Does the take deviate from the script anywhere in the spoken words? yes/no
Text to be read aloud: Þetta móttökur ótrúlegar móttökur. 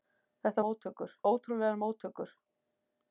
no